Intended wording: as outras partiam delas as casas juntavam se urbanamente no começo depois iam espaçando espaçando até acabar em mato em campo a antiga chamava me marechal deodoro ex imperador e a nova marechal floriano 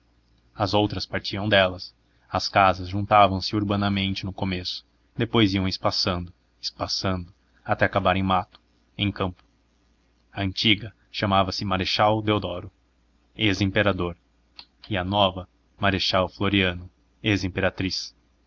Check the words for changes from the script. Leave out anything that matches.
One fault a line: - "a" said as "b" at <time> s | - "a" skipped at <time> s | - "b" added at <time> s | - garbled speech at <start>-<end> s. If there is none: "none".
- "me" said as "se" at 11.5 s